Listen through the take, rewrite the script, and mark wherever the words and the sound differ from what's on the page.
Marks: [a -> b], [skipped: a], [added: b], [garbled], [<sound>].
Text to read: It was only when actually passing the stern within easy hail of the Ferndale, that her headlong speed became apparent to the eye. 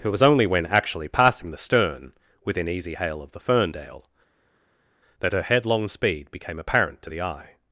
It was only when actually passing the stern within easy hail of the Ferndale, that her headlong speed became apparent to the eye.